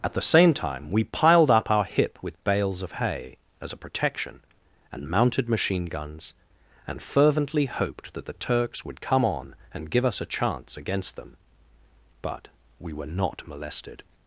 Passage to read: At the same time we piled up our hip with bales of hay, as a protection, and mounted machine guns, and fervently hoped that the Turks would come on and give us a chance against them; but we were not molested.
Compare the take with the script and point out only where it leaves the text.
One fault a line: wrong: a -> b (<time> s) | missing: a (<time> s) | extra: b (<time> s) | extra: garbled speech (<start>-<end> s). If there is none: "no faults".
no faults